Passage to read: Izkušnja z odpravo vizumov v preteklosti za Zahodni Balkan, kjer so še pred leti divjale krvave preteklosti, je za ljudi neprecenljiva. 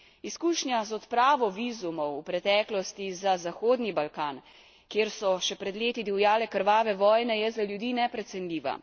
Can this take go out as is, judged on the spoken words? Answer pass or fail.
fail